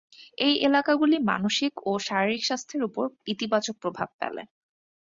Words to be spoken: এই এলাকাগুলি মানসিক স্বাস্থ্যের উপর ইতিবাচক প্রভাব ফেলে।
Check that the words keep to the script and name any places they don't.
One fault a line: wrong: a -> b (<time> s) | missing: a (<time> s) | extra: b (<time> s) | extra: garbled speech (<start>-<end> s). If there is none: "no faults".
extra: ও শারীরিক (1.9 s)